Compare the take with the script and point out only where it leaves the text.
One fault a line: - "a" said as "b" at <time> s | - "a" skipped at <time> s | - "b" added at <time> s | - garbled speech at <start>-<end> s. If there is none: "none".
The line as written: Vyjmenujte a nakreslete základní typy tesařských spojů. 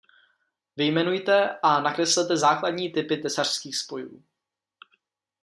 none